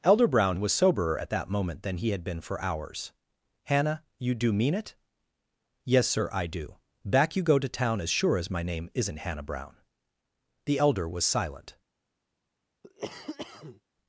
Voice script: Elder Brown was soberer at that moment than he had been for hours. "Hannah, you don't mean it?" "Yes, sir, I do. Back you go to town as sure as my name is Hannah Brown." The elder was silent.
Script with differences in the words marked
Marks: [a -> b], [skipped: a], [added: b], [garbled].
Elder Brown was soberer at that moment than he had been for hours. "Hannah, you [don't -> do] mean it?" "Yes, sir, I do. Back you go to town as sure as my name [is -> isn't] Hannah Brown." The elder was silent.